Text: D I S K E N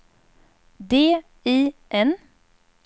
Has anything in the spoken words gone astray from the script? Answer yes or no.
yes